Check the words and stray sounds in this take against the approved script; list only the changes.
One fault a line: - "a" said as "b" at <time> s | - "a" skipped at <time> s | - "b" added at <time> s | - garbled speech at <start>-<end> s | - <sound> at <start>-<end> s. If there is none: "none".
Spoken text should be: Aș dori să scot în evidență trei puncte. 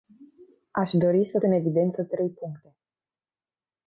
- "scot" skipped at 1.4 s